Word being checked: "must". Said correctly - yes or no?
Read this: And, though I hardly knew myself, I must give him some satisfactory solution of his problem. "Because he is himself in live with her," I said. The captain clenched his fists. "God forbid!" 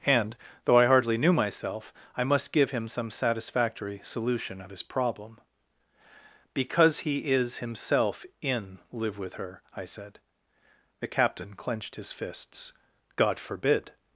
yes